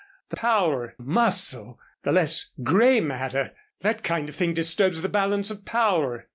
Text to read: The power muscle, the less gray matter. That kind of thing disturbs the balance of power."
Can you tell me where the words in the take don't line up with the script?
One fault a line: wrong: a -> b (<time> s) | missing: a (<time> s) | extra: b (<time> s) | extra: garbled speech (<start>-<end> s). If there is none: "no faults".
no faults